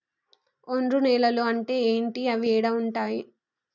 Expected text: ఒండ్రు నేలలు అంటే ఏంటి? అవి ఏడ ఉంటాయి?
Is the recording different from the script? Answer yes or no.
no